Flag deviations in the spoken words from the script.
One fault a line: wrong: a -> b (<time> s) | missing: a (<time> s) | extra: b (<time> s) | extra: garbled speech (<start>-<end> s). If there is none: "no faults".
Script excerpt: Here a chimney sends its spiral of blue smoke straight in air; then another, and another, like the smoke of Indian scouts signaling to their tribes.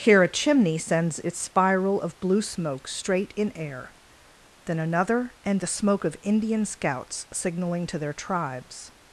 missing: another like (5.6 s)